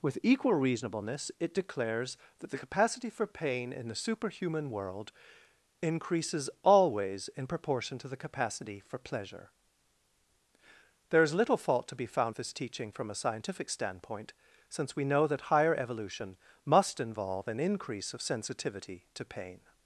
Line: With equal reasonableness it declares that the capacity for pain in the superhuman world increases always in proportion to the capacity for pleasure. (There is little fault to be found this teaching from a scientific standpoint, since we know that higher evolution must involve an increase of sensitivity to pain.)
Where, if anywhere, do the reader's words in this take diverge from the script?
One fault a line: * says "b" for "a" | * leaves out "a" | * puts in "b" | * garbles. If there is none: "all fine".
all fine